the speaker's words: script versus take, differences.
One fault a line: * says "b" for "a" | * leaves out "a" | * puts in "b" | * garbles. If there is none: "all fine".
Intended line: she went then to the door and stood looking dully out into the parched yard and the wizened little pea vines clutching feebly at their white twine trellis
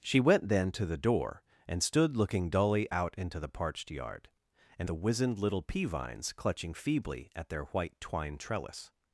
all fine